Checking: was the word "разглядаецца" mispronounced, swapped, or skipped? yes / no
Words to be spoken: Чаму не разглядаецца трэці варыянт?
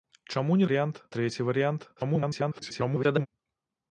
yes